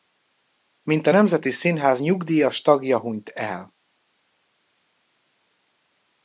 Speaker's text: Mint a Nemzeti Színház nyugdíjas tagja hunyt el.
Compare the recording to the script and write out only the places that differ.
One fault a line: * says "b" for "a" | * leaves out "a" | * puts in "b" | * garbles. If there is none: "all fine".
all fine